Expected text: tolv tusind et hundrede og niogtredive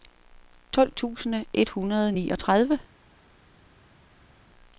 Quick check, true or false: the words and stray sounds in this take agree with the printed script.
true